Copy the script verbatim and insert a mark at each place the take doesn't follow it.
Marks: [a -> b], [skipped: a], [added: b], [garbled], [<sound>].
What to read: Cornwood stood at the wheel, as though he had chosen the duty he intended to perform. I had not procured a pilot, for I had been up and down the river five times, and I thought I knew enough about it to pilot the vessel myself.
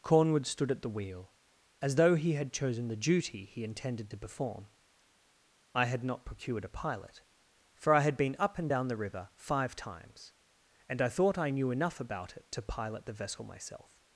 Cornwood stood at the wheel, as though he had chosen the duty he intended to perform. I had not procured a pilot, for I had been up and down the river five times, and I thought I knew enough about it to pilot the vessel myself.